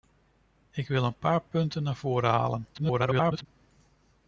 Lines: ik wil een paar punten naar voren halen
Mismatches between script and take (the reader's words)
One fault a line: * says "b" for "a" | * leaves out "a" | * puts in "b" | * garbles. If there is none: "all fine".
* garbles